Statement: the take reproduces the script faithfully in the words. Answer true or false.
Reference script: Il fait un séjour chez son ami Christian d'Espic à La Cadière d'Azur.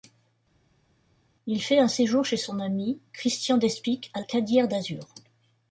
false